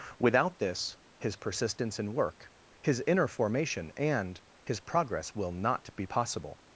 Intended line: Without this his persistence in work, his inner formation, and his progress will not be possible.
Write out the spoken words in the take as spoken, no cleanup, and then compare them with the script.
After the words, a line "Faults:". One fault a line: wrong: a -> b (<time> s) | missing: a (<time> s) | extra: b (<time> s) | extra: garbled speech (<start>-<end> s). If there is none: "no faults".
Without this his persistence in work, his inner formation, and his progress will not be possible.
Faults:
no faults